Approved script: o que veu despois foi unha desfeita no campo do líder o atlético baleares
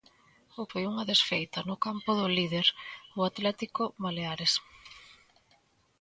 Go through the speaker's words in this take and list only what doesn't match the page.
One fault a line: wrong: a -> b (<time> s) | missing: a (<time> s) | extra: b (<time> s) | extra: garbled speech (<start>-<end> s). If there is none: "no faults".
missing: que veu despois (0.6 s)